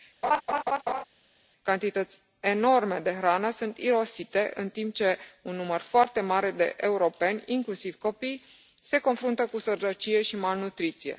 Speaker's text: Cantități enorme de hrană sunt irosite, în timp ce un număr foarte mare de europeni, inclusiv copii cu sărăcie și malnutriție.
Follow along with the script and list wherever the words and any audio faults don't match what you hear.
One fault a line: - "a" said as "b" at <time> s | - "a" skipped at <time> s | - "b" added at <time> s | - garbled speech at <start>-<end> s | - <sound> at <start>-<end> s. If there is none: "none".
- laugh at 0.2-1.0 s
- "se confruntă" added at 8.8 s